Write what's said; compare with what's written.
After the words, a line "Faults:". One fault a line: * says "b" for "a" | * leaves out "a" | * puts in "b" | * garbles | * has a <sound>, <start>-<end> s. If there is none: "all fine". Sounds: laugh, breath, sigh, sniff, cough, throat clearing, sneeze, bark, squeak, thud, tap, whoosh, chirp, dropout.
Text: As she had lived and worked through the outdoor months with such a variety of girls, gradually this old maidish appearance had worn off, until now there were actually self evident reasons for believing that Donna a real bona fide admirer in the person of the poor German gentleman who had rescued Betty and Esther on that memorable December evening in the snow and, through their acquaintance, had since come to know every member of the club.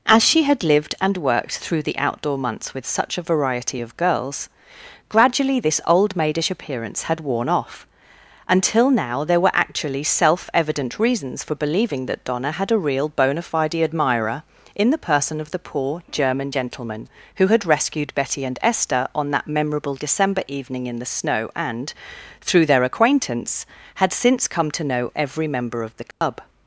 As she had lived and worked through the outdoor months with such a variety of girls, gradually this old maidish appearance had worn off, until now there were actually self evident reasons for believing that Donna had a real bona fide admirer in the person of the poor German gentleman who had rescued Betty and Esther on that memorable December evening in the snow and, through their acquaintance, had since come to know every member of the club.
Faults:
* puts in "had"
* has a dropout, 26.1-26.2 s